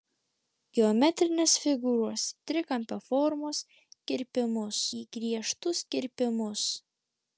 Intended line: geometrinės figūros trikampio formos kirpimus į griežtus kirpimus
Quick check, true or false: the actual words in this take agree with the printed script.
true